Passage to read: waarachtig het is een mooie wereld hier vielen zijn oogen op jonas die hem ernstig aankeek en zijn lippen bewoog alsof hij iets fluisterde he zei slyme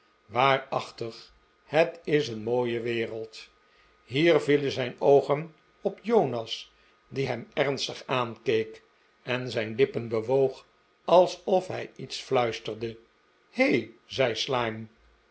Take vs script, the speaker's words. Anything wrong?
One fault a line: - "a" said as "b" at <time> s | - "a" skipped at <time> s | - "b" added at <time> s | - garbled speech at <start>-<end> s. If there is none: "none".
none